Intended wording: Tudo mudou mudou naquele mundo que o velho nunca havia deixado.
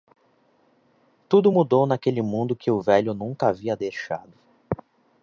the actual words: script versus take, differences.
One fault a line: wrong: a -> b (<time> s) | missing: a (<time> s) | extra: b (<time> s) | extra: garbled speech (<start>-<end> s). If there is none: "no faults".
missing: mudou (1.9 s)